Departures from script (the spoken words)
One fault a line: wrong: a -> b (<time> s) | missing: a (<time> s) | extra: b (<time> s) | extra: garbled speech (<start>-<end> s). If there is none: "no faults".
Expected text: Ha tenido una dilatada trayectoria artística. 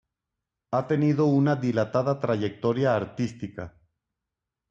no faults